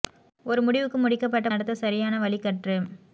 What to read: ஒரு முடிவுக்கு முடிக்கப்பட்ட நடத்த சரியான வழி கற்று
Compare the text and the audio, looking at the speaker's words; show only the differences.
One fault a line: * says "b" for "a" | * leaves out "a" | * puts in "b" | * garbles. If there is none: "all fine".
all fine